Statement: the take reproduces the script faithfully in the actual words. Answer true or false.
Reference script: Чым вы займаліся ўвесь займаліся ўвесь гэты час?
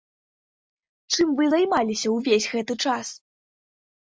false